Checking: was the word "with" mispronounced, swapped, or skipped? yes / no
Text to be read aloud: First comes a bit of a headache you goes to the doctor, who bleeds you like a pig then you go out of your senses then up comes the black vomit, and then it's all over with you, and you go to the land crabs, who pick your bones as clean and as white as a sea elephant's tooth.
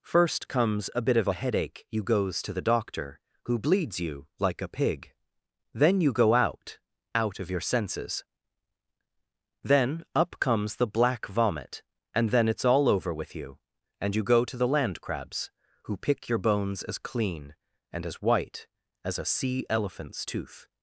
no